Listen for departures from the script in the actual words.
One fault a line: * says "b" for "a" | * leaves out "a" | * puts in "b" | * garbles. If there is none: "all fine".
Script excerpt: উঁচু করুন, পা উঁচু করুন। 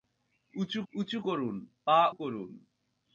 * puts in "উঁচু"
* leaves out "উঁচু"